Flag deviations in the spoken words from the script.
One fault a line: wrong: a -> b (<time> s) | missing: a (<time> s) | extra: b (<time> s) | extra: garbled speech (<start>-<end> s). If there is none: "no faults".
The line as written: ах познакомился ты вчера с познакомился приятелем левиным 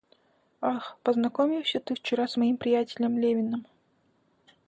wrong: познакомился -> моим (2.3 s)